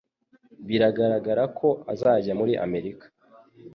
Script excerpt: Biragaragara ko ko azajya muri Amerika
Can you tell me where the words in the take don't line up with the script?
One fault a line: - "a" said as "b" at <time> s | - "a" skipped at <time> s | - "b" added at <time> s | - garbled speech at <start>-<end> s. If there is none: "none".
- "ko" skipped at 1.7 s